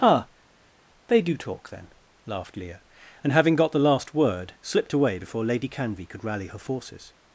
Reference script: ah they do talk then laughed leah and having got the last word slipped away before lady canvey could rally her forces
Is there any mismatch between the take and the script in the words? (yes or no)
no